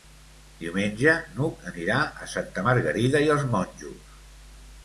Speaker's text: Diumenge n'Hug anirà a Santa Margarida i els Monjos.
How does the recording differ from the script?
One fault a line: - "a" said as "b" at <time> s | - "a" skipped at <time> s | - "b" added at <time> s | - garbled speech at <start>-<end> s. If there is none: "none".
none